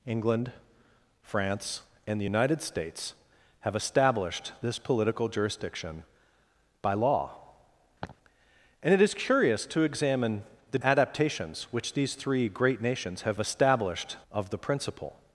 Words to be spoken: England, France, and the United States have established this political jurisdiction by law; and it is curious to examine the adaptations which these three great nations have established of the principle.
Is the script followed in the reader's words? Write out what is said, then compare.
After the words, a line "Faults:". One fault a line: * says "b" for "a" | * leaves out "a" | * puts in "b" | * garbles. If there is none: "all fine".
England, France, and the United States have established this political jurisdiction by law; and it is curious to examine the adaptations which these three great nations have established of the principle.
Faults:
all fine